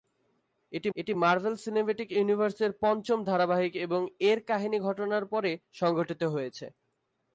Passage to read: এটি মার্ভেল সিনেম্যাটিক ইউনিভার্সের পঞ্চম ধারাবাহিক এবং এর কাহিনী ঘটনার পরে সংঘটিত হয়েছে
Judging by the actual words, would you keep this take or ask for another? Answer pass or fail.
fail